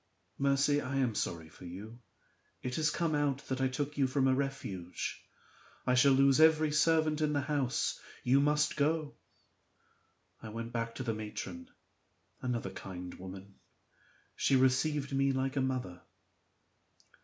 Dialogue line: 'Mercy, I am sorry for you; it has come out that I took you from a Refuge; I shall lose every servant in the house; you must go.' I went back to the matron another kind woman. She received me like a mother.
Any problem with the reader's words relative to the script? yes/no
no